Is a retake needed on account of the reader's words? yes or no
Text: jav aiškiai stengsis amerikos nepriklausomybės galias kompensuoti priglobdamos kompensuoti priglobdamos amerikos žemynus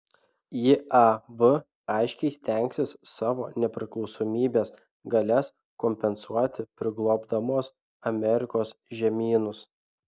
yes